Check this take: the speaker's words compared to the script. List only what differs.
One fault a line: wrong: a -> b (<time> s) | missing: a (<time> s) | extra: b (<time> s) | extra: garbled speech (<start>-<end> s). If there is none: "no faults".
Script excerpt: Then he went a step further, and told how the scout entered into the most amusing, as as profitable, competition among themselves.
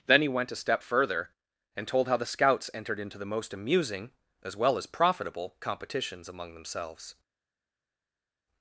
wrong: scout -> scouts (2.3 s)
extra: well (4.6 s)
wrong: competition -> competitions (5.6 s)